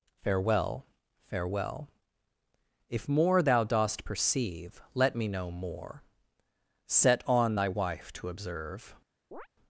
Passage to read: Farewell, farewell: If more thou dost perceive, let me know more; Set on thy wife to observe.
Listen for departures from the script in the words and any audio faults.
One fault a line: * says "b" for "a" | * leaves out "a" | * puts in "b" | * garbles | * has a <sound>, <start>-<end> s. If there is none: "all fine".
* has a chirp, 9.3-9.5 s